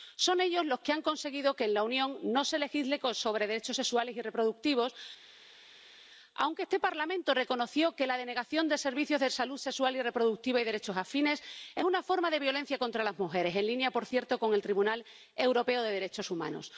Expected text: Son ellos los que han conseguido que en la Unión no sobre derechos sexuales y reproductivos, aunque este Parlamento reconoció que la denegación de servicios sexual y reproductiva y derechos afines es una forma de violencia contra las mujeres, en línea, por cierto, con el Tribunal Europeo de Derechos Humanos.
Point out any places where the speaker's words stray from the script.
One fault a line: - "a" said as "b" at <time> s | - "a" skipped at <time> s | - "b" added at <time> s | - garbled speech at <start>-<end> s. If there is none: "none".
- "se legisle" added at 2.5 s
- "de salud" added at 9.2 s